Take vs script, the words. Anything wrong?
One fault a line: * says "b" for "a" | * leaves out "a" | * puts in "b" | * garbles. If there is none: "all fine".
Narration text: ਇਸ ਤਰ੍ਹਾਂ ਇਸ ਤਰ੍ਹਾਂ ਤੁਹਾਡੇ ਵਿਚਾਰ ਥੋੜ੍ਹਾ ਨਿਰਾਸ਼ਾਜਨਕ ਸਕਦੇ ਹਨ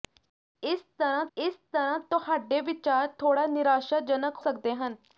all fine